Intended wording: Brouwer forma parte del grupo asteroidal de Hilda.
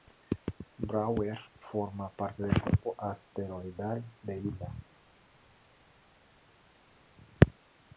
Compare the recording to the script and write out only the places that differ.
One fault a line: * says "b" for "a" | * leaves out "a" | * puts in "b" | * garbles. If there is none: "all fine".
all fine